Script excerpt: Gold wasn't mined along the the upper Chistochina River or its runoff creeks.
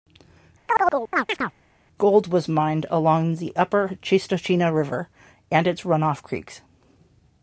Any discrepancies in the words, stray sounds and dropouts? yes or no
yes